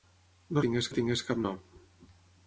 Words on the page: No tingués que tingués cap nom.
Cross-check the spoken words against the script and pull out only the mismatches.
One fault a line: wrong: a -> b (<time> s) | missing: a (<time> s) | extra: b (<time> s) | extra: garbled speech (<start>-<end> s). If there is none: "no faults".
no faults